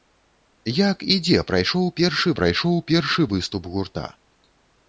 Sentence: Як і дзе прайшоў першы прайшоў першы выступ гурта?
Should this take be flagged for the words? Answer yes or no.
no